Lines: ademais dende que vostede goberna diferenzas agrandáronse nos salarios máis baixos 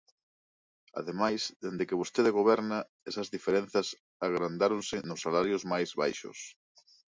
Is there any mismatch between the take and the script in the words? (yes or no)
yes